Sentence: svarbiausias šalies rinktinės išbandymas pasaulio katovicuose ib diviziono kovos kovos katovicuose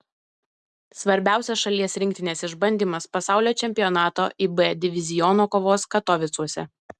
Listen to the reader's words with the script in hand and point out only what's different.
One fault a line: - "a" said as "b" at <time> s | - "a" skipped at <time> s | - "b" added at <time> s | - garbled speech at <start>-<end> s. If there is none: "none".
- "katovicuose" said as "čempionato" at 3.6 s
- "kovos" skipped at 5.9 s